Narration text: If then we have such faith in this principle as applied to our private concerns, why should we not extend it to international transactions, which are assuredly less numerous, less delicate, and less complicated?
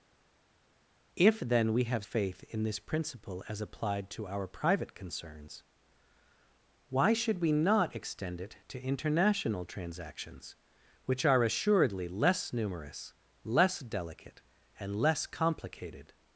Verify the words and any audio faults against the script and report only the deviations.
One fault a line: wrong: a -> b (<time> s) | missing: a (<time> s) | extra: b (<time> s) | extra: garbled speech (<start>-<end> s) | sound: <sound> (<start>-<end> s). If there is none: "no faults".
missing: such (2.1 s)